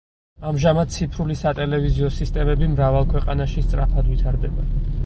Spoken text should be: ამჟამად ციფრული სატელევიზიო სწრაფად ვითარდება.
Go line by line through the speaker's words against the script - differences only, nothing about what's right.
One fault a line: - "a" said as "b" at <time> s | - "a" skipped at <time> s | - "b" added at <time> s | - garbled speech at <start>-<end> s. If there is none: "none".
- "სისტემები მრავალ ქვეყანაში" added at 2.2 s